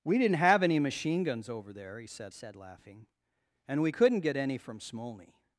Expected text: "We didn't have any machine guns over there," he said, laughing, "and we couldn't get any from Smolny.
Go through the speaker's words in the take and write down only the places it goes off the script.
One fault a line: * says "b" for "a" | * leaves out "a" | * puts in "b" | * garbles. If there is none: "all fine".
* puts in "said"